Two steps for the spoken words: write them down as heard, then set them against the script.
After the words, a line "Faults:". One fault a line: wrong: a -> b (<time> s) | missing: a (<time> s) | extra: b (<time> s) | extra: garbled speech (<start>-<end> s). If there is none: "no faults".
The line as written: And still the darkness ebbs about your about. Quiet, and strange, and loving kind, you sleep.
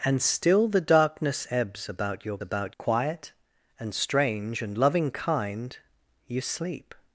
And still the darkness ebbs about your about. Quiet, and strange, and loving kind, you sleep.
Faults:
no faults